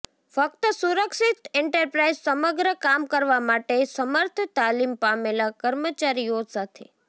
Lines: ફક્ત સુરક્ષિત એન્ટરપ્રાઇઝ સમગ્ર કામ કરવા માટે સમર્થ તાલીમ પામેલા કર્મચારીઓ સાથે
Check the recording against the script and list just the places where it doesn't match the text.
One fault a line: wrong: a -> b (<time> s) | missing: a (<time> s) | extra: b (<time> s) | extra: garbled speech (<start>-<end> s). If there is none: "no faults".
no faults